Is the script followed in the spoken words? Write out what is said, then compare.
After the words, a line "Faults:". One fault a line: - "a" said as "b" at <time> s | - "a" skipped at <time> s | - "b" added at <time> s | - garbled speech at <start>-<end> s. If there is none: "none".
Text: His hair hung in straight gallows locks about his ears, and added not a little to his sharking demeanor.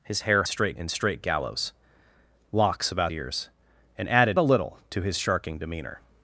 His hair straight in straight gallows locks about ears, and added a little to his sharking demeanor.
Faults:
- "hung" said as "straight" at 0.5 s
- "his" skipped at 3.1 s
- "not" skipped at 4.4 s